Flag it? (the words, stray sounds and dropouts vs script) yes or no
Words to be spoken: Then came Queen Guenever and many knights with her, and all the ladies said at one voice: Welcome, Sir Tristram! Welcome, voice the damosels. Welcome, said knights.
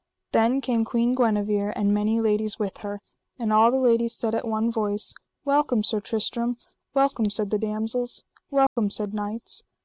yes